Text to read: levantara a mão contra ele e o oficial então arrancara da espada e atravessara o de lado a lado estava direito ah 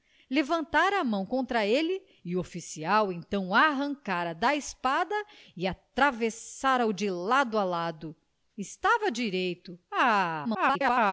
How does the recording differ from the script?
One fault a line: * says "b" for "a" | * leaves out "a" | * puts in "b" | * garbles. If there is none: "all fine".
* garbles